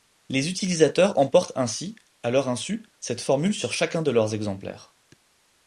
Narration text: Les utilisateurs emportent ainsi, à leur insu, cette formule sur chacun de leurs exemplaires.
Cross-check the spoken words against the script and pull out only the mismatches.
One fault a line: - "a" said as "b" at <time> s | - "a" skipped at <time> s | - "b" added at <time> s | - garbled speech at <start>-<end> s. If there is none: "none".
none